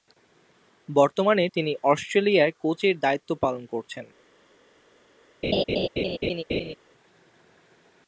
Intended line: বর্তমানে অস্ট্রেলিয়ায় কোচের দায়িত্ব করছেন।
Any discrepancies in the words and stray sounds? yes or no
yes